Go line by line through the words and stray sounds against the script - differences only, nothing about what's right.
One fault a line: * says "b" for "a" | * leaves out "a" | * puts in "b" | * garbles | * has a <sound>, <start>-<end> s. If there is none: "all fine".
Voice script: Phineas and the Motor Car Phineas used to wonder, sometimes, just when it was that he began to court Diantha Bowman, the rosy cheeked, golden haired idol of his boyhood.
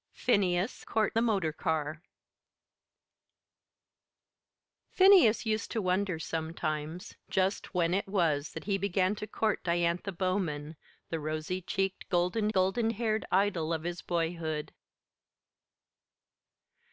* says "court" for "and"
* puts in "golden"